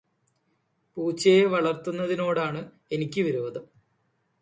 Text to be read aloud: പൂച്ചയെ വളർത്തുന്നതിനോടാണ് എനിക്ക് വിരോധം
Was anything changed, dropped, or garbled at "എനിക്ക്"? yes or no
no